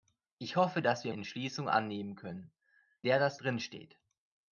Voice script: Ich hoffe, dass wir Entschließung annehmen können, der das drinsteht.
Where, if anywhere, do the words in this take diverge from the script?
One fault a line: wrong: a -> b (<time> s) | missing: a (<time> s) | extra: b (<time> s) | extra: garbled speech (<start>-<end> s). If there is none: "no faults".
no faults